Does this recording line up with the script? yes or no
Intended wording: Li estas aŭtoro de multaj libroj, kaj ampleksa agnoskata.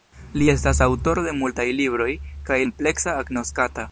yes